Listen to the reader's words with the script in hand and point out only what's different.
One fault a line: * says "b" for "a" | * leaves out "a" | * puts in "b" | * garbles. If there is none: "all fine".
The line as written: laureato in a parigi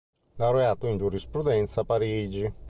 * puts in "giurisprudenza"